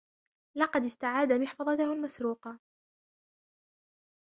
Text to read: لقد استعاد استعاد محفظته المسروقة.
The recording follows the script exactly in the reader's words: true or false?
false